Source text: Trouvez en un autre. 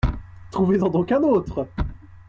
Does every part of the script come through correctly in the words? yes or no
no